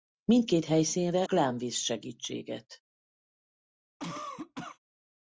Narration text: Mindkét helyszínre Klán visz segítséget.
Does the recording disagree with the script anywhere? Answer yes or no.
no